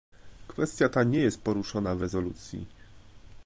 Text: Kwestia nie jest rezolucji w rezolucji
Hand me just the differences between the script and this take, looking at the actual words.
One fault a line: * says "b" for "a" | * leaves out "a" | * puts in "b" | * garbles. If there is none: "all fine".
* puts in "ta"
* says "poruszona" for "rezolucji"